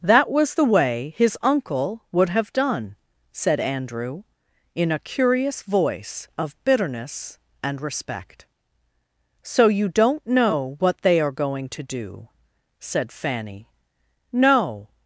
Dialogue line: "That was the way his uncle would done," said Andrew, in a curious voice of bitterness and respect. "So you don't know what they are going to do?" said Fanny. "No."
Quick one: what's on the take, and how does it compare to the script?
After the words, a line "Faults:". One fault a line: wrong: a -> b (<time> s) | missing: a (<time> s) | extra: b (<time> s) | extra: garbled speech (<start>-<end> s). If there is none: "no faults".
"That was the way his uncle would have done," said Andrew, in a curious voice of bitterness and respect. "So you don't know what they are going to do?" said Fanny. "No."
Faults:
extra: have (2.3 s)